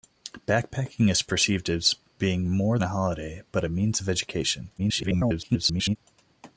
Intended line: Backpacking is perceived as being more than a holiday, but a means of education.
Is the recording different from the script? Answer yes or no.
yes